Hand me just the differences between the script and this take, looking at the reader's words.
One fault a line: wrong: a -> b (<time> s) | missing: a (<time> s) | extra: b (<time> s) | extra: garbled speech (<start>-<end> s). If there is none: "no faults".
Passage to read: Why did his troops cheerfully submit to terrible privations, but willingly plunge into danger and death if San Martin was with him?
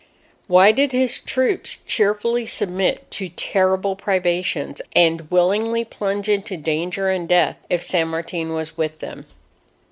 wrong: but -> and (5.0 s)
wrong: him -> them (9.0 s)